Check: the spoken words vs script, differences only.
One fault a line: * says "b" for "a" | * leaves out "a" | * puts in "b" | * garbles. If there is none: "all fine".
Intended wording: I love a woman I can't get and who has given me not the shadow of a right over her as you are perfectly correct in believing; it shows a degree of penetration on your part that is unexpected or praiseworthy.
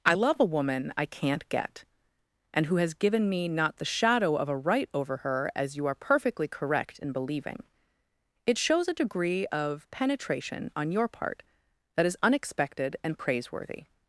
* says "and" for "or"